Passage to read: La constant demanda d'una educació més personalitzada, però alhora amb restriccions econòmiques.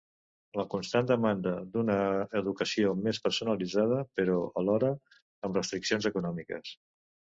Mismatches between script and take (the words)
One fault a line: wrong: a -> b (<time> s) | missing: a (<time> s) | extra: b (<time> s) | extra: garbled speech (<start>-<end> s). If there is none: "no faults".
no faults